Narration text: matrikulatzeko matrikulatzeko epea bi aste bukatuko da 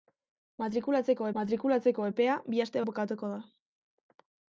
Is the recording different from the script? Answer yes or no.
no